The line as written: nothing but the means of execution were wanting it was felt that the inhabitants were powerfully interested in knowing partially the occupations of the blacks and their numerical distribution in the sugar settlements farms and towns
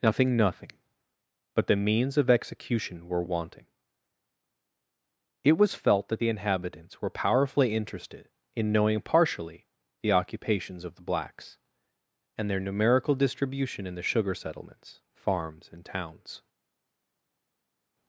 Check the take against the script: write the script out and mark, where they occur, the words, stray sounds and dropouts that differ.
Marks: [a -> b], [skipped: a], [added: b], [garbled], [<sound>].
nothing [added: nothing] but the means of execution were wanting it was felt that the inhabitants were powerfully interested in knowing partially the occupations of the blacks and their numerical distribution in the sugar settlements farms and towns